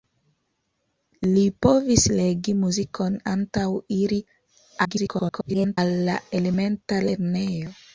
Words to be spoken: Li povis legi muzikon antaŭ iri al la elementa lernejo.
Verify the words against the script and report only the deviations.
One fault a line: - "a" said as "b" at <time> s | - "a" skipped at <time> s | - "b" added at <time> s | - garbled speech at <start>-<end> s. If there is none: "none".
- garbled speech at 4.8-5.8 s